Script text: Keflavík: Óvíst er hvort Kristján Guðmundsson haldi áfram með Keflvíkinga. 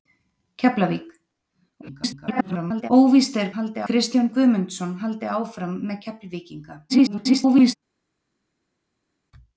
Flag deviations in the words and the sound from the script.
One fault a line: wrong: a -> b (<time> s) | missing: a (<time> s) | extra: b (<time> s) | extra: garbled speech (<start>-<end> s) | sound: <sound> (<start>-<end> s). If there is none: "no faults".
extra: garbled speech (1.8-2.9 s)
wrong: hvort -> haldi (3.6 s)
extra: garbled speech (6.9-7.8 s)